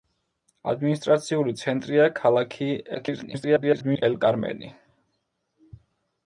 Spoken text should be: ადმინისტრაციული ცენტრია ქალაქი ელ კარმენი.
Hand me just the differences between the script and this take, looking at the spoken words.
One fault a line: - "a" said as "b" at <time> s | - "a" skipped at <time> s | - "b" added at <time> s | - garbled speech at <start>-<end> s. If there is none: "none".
- garbled speech at 2.9-4.0 s